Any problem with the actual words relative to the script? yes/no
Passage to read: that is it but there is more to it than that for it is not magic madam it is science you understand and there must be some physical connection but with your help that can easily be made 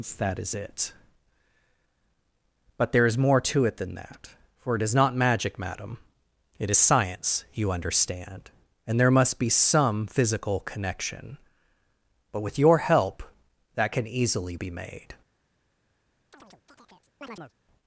no